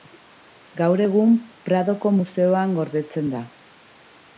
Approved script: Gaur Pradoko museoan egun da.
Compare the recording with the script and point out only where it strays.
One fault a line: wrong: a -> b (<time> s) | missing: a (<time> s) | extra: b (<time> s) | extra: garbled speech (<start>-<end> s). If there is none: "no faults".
extra: egun (1.1 s)
wrong: egun -> gordetzen (2.8 s)